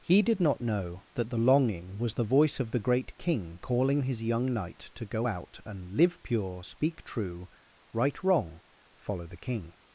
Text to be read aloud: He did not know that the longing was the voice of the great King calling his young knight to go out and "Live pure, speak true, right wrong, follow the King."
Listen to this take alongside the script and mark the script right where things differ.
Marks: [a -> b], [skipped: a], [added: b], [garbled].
He did not know that the longing was the voice of the great King calling his young knight to go out and "Live pure, speak true, right wrong, follow the King."